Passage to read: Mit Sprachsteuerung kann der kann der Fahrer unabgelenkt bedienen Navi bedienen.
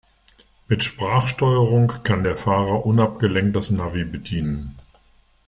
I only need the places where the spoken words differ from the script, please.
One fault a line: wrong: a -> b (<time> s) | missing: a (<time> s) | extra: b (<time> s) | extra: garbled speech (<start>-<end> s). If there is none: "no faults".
missing: kann der (2.4 s)
wrong: bedienen -> das (3.5 s)